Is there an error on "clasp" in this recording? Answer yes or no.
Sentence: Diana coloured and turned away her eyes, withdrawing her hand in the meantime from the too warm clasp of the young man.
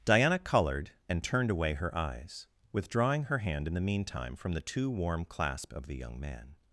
no